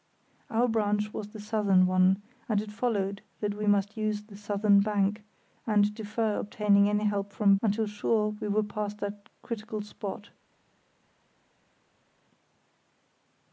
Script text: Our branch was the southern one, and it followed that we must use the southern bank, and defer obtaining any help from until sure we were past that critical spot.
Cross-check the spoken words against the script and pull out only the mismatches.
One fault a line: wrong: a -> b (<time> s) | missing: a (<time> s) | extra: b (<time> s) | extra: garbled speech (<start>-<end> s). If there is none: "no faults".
no faults